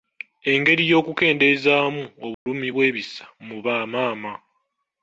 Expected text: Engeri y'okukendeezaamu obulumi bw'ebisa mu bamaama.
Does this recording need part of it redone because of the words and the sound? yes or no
yes